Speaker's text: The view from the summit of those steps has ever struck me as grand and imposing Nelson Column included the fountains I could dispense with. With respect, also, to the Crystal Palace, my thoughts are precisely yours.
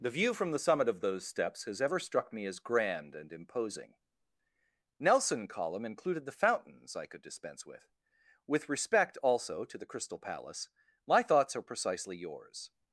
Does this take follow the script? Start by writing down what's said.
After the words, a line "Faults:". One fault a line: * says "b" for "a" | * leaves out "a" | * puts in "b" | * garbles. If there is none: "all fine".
The view from the summit of those steps has ever struck me as grand and imposing Nelson Column included the fountains I could dispense with. With respect, also, to the Crystal Palace, my thoughts are precisely yours.
Faults:
all fine